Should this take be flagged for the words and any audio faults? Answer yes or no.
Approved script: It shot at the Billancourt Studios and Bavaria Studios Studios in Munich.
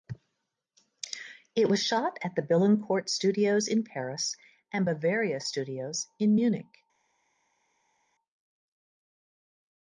yes